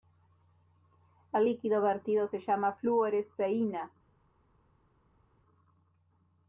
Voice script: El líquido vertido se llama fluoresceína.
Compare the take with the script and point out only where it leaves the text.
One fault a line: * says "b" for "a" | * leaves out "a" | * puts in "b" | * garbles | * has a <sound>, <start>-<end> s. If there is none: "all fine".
all fine